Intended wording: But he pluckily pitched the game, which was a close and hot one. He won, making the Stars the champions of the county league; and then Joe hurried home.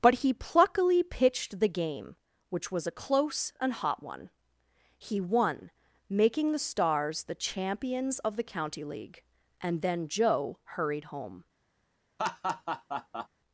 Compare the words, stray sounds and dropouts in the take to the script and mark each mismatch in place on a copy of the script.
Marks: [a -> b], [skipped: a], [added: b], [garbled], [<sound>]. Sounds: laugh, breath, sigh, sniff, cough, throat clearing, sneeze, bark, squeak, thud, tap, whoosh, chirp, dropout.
But he pluckily pitched the game, which was a close and hot one. He won, making the Stars the champions of the county league; and then Joe hurried home. [laugh]